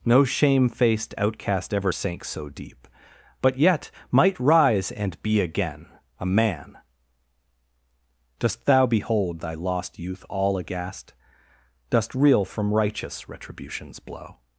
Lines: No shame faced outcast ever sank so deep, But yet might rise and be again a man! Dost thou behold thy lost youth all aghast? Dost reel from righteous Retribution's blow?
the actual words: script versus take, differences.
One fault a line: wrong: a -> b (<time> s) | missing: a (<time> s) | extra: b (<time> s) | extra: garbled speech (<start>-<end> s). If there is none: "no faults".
no faults